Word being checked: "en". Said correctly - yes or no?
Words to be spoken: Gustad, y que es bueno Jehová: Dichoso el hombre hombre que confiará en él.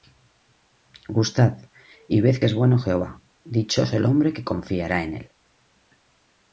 yes